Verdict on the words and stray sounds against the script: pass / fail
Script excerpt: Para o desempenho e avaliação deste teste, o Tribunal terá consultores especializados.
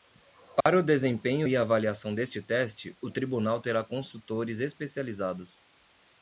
fail